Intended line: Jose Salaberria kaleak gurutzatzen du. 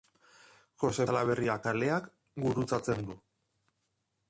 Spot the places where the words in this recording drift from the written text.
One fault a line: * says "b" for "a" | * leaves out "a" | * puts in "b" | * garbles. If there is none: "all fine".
all fine